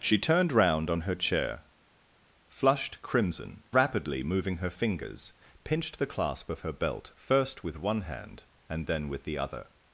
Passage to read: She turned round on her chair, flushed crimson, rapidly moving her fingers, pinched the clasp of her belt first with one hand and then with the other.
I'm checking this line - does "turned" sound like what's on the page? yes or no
yes